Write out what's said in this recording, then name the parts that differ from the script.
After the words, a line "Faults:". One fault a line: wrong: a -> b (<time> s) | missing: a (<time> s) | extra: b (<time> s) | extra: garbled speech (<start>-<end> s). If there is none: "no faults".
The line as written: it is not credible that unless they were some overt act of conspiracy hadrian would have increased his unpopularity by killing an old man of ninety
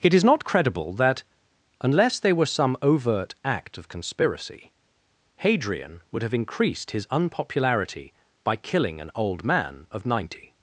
it is not credible that unless they were some overt act of conspiracy hadrian would have increased his unpopularity by killing an old man of ninety
Faults:
no faults